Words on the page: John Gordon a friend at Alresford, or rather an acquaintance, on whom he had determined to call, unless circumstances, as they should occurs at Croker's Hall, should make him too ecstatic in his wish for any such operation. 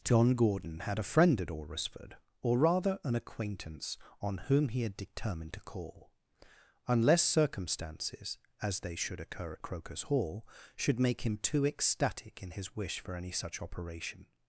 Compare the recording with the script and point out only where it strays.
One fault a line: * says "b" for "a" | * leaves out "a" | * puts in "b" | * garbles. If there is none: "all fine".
* puts in "had"
* says "occur" for "occurs"